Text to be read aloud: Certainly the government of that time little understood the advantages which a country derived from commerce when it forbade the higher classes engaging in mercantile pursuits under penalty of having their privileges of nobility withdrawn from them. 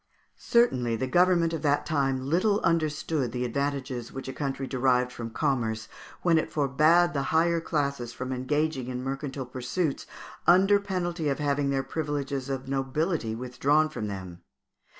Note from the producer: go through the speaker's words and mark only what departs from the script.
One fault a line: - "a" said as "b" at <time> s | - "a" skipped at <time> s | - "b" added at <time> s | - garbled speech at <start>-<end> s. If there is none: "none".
- "from" added at 8.1 s